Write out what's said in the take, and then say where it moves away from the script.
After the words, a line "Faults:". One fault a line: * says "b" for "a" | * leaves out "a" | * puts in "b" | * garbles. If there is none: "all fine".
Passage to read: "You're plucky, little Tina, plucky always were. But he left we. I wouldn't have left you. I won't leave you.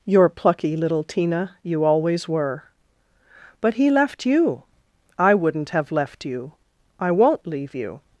"You're plucky, little Tina, you always were. But he left you. I wouldn't have left you. I won't leave you.
Faults:
* says "you" for "plucky"
* says "you" for "we"